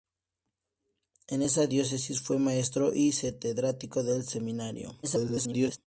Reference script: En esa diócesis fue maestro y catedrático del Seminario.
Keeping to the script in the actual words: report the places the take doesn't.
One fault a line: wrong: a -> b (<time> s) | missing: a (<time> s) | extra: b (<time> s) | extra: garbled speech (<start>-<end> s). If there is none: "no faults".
extra: garbled speech (5.0-5.8 s)